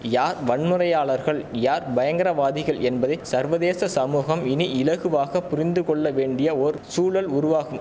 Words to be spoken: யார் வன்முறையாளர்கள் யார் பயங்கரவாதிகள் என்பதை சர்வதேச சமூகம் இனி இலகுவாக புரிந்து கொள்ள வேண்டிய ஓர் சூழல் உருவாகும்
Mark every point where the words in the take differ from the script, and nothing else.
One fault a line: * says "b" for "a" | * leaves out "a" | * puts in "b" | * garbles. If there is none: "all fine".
all fine